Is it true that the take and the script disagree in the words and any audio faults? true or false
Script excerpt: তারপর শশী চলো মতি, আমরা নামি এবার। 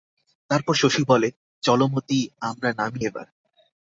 true